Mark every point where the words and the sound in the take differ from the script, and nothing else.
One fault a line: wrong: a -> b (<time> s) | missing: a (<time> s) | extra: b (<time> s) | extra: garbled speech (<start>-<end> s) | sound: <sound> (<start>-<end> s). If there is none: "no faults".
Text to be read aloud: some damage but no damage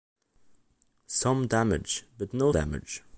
no faults